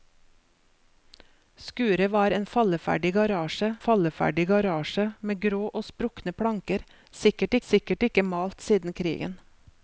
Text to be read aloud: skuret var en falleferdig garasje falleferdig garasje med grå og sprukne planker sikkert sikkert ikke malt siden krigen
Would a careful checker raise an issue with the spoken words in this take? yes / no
no